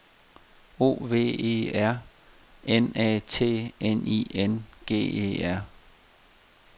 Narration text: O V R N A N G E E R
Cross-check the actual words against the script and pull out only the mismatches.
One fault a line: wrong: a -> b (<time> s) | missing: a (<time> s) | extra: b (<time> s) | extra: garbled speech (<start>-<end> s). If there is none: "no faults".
extra: E (1.4 s)
extra: T (3.2 s)
extra: I N (4.1 s)
missing: E (5.5 s)